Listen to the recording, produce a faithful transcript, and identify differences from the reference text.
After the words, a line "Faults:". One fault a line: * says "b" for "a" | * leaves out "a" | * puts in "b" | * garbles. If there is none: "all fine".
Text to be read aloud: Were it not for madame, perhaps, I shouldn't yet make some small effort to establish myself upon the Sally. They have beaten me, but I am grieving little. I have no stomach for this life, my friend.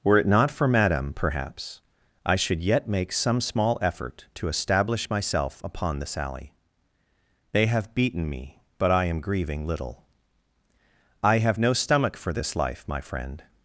Were it not for madame, perhaps, I should yet make some small effort to establish myself upon the Sally. They have beaten me, but I am grieving little. I have no stomach for this life, my friend.
Faults:
* says "should" for "shouldn't"